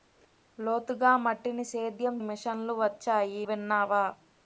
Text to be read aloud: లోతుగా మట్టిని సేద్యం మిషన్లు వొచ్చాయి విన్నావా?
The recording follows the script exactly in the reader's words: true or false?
true